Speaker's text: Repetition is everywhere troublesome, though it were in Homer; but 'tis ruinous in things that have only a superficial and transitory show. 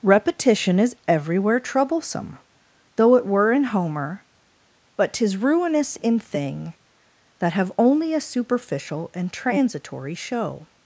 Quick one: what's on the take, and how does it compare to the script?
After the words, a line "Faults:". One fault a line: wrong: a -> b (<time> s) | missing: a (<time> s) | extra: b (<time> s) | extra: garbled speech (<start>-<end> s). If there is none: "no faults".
Repetition is everywhere troublesome, though it were in Homer; but 'tis ruinous in thing that have only a superficial and transitory show.
Faults:
wrong: things -> thing (6.2 s)